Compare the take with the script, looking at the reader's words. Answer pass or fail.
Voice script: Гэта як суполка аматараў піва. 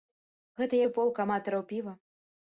fail